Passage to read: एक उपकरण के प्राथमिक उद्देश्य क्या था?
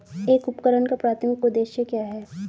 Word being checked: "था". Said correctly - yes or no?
no